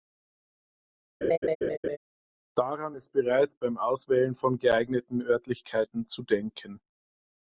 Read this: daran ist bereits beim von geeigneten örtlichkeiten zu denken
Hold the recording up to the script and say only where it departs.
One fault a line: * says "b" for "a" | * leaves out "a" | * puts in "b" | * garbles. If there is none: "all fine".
* puts in "auswählen"